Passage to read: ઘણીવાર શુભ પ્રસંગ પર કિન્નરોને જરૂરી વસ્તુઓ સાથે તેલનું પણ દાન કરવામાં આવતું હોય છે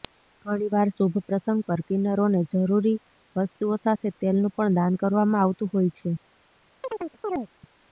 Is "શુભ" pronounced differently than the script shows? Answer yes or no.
no